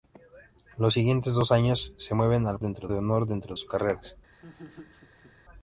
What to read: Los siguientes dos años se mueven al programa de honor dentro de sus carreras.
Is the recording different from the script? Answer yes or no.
yes